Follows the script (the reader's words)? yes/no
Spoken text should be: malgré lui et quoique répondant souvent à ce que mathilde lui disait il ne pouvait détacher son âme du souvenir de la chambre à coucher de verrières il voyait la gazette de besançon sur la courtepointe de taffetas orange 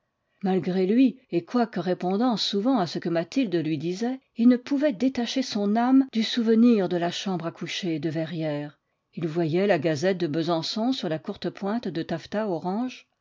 yes